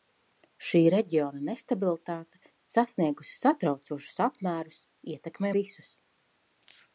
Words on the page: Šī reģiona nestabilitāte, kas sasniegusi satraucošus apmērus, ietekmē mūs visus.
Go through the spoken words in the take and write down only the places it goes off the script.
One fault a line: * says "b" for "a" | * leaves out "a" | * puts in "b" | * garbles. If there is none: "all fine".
* leaves out "kas"
* leaves out "mūs"